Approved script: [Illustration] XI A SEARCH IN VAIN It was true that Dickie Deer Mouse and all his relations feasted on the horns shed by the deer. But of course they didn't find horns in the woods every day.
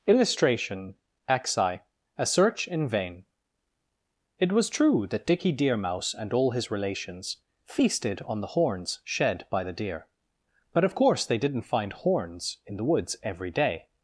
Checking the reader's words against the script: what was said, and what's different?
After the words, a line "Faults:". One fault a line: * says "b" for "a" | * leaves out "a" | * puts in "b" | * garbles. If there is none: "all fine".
[Illustration] XI A SEARCH IN VAIN It was true that Dickie Deer Mouse and all his relations feasted on the horns shed by the deer. But of course they didn't find horns in the woods every day.
Faults:
all fine